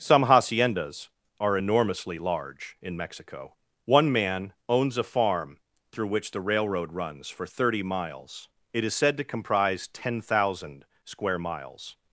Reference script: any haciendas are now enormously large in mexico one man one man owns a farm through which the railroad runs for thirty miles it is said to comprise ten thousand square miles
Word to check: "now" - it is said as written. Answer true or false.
false